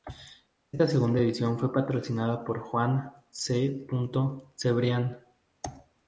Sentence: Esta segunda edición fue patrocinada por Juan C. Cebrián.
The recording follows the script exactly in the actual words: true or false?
true